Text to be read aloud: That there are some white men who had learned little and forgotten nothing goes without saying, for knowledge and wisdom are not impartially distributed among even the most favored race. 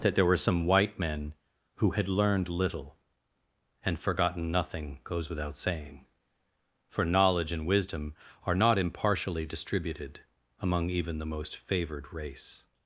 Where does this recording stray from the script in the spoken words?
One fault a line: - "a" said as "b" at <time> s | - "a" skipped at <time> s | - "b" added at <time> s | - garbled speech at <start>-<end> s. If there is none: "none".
- "are" said as "were" at 0.2 s